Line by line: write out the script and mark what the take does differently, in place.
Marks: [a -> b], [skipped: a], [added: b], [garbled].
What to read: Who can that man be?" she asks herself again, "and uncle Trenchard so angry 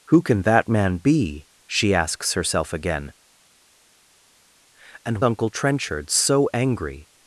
Who can that man be?" she asks herself again, "and uncle Trenchard so angry